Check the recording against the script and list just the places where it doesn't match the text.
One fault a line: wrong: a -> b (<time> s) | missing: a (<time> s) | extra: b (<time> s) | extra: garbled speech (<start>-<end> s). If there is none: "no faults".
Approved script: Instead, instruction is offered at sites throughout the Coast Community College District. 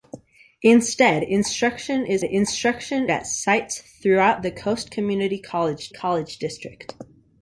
wrong: offered -> instruction (2.2 s)
extra: College (5.9 s)